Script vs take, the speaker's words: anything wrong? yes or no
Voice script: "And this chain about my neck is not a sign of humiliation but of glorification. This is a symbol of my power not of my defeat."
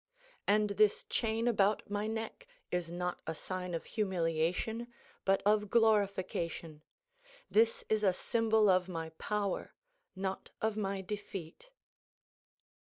no